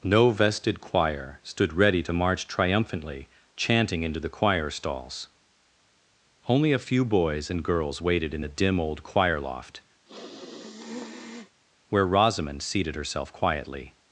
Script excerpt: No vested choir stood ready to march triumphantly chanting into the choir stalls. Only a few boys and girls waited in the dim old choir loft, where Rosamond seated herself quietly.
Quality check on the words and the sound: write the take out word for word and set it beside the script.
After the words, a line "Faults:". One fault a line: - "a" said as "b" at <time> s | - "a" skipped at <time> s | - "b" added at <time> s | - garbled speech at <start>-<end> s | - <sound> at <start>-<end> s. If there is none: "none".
No vested choir stood ready to march triumphantly chanting into the choir stalls. Only a few boys and girls waited in the dim old choir loft, where Rosamond seated herself quietly.
Faults:
- sniff at 10.1-11.6 s